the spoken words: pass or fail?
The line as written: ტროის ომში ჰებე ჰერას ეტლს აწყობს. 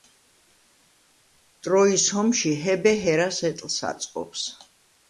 pass